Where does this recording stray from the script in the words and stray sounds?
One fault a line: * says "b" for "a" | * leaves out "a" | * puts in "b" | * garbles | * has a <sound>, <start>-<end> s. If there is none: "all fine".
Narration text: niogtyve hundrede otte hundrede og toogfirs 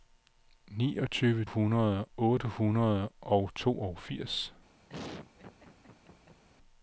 * has a laugh, 4.9-6.4 s